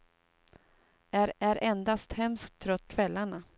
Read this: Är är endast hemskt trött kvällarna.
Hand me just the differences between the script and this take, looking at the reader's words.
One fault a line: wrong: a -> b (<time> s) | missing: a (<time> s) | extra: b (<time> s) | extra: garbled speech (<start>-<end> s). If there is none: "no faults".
no faults